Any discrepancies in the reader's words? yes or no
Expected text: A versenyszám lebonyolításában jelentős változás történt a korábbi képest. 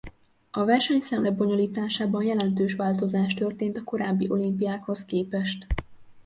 yes